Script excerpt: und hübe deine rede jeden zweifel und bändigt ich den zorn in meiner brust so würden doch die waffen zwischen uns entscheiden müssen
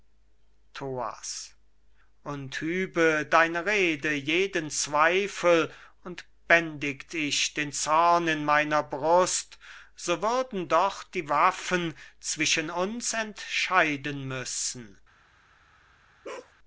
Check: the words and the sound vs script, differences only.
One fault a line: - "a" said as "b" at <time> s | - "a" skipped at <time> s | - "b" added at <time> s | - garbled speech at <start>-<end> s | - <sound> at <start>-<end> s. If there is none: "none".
- bark at 16.2-16.5 s